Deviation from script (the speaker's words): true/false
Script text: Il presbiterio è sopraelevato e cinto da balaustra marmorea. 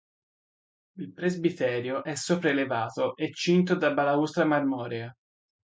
false